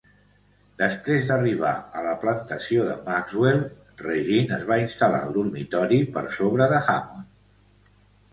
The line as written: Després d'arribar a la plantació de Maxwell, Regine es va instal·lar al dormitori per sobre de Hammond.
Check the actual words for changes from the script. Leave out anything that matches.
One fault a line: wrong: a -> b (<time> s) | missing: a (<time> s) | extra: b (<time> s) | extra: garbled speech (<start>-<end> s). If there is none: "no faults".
no faults